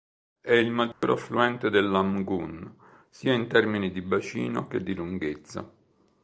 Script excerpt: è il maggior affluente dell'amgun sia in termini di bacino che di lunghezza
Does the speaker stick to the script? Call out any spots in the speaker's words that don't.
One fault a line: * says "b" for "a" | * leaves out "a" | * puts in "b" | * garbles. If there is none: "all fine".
all fine